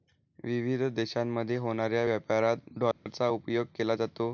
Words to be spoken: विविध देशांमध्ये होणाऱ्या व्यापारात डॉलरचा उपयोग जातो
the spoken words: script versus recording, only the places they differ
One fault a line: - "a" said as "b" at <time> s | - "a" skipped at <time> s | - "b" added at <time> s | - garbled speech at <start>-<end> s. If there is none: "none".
- "केला" added at 3.8 s